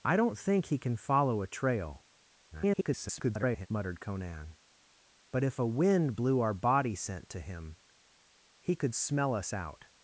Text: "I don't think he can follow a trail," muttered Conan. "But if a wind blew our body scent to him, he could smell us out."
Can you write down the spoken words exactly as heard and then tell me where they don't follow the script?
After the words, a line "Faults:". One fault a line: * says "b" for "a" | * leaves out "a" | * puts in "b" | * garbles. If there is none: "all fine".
"I don't think he can follow a trail," [garbled] muttered Conan. "But if a wind blew our body scent to him, he could smell us out."
Faults:
* garbles